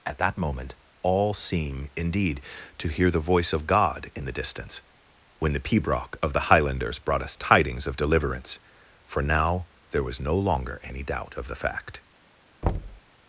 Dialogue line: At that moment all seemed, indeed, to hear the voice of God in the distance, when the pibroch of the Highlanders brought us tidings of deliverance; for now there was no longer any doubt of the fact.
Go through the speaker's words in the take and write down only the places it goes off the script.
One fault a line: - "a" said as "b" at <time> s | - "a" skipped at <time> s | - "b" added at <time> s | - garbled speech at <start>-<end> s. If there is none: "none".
- "seemed" said as "seem" at 1.3 s